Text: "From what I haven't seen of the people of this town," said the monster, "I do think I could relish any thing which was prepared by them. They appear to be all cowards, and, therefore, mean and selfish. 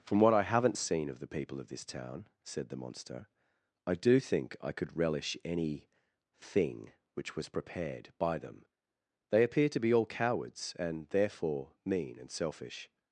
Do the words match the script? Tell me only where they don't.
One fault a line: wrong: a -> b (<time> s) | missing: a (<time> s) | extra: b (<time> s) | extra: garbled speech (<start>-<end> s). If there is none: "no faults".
no faults